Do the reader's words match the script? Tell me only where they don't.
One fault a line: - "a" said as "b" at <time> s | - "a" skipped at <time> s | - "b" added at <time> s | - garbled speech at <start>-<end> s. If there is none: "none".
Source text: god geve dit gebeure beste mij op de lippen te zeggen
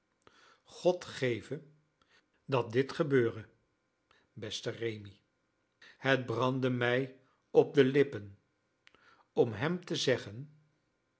- "dat" added at 2.5 s
- "rémi het brandde" added at 4.7 s
- "om hem" added at 9.3 s